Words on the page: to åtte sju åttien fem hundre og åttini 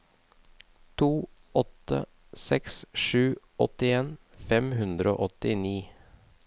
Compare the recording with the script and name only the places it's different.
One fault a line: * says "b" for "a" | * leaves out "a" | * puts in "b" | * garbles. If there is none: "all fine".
* puts in "seks"